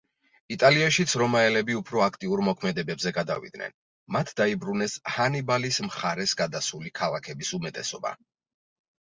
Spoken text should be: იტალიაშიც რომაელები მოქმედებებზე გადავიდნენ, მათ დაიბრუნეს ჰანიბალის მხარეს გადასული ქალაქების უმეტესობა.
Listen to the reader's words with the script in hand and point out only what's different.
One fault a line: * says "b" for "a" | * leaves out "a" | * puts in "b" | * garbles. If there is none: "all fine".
* puts in "უფრო აქტიურ"